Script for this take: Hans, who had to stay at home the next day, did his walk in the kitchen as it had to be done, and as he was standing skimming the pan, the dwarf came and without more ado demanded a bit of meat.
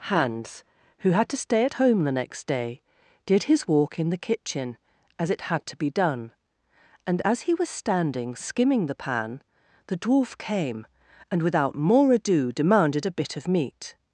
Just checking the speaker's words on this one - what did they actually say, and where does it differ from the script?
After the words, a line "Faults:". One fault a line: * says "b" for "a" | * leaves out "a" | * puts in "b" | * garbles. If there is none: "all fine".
Hans, who had to stay at home the next day, did his walk in the kitchen as it had to be done, and as he was standing skimming the pan, the dwarf came and without more ado demanded a bit of meat.
Faults:
all fine